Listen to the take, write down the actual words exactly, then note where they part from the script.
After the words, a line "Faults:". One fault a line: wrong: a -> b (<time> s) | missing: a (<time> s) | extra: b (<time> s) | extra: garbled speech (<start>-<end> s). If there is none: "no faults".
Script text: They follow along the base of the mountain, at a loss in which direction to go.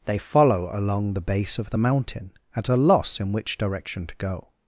They follow along the base of the mountain, at a loss in which direction to go.
Faults:
no faults